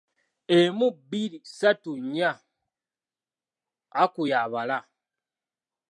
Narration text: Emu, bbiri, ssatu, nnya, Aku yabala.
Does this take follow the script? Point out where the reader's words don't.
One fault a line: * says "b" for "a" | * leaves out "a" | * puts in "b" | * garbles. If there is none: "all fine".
all fine